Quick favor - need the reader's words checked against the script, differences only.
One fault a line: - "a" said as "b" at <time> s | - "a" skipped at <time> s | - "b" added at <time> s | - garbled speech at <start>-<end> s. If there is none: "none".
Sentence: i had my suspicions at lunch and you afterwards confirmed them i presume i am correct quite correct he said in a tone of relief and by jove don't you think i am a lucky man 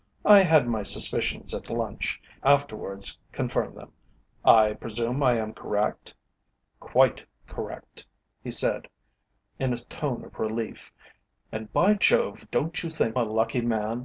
- "and you" skipped at 2.2 s
- "i am" skipped at 13.2 s